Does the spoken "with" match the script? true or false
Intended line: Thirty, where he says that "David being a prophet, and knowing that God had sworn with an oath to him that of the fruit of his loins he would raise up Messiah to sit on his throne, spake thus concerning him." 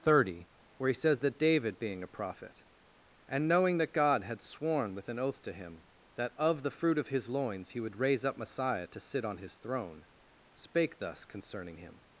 true